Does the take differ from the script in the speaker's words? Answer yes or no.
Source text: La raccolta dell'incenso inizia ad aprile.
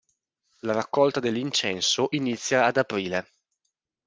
no